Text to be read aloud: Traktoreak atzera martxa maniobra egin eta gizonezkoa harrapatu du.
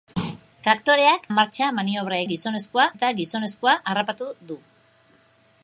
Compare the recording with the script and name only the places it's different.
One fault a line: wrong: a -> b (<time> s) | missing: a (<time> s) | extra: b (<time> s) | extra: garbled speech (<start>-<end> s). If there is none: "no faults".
missing: atzera (1.3 s)
wrong: egin -> gizonezkoa (2.3 s)